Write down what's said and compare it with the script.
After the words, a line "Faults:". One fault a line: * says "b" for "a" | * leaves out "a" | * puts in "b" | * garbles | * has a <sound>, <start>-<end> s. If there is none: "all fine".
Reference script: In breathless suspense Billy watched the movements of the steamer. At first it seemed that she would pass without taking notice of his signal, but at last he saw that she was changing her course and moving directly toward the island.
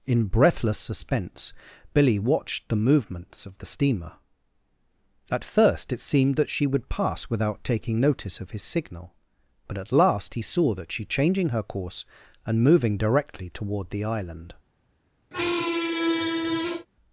In breathless suspense Billy watched the movements of the steamer. At first it seemed that she would pass without taking notice of his signal, but at last he saw that she changing her course and moving directly toward the island.
Faults:
* leaves out "was"
* has a squeak, 15.3-16.9 s